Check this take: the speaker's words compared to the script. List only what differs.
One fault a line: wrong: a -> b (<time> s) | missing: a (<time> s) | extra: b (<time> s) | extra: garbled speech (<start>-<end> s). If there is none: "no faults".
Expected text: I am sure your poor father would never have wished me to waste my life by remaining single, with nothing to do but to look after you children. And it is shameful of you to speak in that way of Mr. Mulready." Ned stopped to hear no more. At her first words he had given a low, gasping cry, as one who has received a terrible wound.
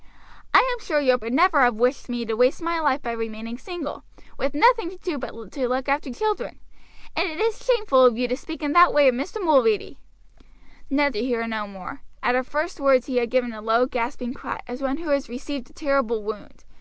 missing: poor father (1.2 s)
missing: you (6.1 s)
missing: stopped (11.1 s)